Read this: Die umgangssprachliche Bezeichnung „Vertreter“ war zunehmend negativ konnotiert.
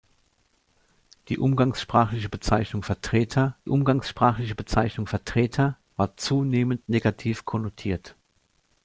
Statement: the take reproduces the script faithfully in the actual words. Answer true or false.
false